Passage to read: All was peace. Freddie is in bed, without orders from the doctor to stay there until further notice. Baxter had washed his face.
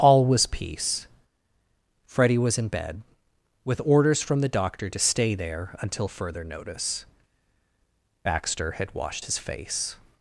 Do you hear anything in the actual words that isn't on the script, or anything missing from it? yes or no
yes